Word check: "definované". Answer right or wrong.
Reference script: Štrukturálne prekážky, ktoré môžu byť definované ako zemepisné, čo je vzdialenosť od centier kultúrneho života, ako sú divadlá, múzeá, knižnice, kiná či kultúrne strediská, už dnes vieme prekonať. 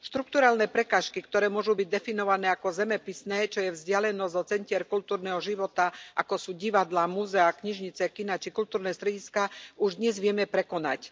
right